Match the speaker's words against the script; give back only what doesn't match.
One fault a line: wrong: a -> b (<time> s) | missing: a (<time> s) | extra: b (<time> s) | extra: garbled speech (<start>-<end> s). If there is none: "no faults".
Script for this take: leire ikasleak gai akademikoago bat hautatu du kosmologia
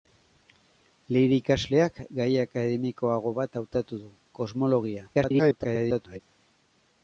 extra: garbled speech (5.1-6.2 s)